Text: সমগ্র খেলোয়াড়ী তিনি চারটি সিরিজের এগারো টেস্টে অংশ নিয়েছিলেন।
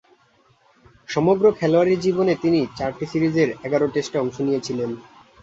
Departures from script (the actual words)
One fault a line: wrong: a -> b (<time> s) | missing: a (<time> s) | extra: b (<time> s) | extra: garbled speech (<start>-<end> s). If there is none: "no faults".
extra: জীবনে (2.0 s)